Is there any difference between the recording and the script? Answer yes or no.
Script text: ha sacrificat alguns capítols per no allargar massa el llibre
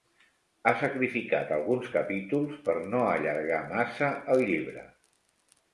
no